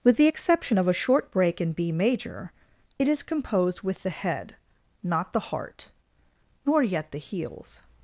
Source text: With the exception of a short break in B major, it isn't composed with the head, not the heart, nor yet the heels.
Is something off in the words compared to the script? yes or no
yes